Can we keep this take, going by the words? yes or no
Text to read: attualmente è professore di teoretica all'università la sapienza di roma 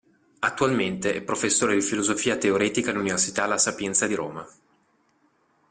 no